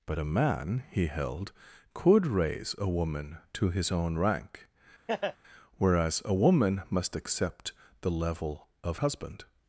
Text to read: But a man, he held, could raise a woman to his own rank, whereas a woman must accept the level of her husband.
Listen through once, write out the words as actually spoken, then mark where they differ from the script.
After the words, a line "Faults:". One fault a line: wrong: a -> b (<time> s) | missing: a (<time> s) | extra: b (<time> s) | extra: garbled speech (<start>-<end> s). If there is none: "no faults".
But a man, he held, could raise a woman to his own rank, whereas a woman must accept the level of husband.
Faults:
missing: her (9.0 s)